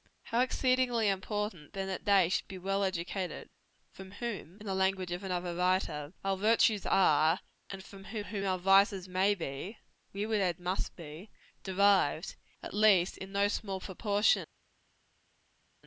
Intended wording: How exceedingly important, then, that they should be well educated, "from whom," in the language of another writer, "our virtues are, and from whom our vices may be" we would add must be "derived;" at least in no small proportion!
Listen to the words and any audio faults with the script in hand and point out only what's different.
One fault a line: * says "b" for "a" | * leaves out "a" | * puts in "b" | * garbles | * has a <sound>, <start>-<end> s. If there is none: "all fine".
* puts in "whom"